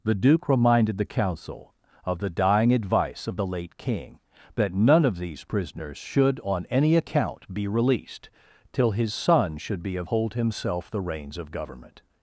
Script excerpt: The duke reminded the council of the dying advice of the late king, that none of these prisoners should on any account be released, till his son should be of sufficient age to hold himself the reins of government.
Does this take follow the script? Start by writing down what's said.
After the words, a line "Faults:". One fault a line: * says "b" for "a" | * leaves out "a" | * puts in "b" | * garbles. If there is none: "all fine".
The duke reminded the council of the dying advice of the late king, that none of these prisoners should on any account be released, till his son should be of hold himself the reins of government.
Faults:
* leaves out "sufficient age to"